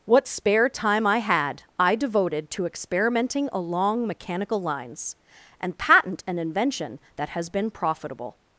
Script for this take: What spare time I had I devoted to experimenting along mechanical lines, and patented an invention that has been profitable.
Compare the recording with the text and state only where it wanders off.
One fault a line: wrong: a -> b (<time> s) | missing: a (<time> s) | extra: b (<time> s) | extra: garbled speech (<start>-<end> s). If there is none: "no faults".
wrong: patented -> patent (5.8 s)